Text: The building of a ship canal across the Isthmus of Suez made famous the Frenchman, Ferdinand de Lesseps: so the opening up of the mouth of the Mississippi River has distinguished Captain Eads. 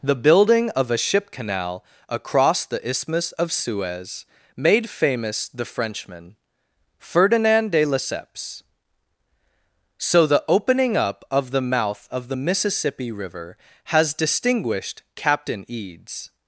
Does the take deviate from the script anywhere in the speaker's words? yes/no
no